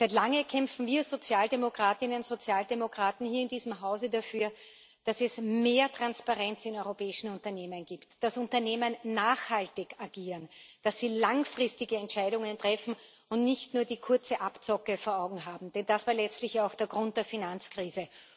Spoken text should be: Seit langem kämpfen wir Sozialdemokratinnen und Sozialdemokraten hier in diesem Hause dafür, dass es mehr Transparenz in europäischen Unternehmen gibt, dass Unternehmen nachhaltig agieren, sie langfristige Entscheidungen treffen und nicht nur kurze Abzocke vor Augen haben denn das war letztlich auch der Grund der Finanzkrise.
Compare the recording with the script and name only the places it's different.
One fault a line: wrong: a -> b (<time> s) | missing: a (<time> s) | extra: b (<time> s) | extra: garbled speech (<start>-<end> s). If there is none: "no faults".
extra: dass (10.8 s)
extra: die (13.8 s)